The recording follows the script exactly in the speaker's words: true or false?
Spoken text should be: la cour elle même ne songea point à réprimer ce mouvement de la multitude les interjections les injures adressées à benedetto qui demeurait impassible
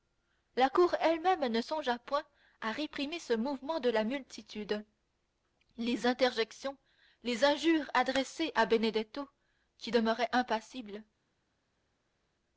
true